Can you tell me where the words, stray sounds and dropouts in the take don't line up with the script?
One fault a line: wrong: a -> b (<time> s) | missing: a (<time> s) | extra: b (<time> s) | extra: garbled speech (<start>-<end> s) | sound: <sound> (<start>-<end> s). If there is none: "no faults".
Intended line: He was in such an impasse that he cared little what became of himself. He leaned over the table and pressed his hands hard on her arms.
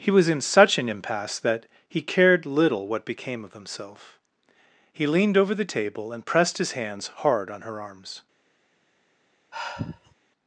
sound: sigh (9.5-10.1 s)